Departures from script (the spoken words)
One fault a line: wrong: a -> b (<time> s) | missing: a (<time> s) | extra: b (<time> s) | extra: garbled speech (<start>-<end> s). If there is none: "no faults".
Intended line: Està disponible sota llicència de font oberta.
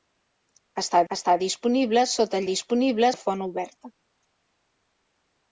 extra: està (1.1 s)
wrong: llicència -> disponible (2.5 s)